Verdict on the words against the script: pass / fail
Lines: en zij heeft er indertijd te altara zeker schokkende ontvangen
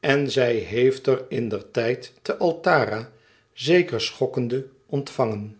pass